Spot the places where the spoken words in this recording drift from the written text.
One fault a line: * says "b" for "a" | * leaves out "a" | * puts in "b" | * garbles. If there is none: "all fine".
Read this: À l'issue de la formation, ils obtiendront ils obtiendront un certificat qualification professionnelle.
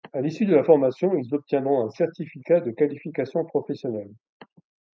* leaves out "ils obtiendront"
* puts in "de"